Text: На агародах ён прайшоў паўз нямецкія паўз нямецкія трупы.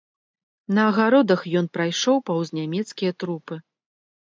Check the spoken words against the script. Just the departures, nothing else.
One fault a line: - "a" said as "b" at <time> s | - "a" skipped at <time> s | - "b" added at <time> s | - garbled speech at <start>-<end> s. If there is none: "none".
- "паўз нямецкія" skipped at 3.1 s